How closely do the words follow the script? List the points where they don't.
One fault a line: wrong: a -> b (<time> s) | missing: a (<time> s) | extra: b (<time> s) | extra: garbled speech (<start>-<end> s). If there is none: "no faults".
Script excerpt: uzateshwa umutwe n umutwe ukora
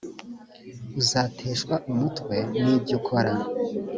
wrong: umutwe -> ibyo (2.8 s)